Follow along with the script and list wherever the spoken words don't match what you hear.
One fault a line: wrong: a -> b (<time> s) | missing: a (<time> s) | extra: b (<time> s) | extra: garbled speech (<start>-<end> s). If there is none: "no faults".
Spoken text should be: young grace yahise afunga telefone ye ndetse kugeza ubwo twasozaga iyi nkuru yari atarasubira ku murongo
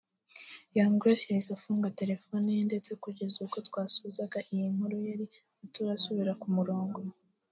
no faults